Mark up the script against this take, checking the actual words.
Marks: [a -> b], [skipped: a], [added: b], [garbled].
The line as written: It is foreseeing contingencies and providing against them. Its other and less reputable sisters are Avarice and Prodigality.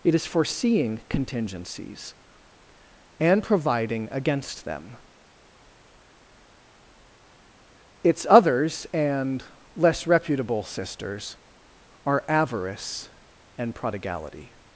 It is foreseeing contingencies and providing against them. Its [other -> others] and less reputable sisters are Avarice and Prodigality.